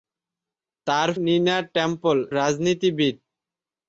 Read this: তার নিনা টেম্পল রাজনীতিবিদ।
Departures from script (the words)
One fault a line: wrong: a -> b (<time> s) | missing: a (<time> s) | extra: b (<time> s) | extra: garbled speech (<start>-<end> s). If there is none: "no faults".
no faults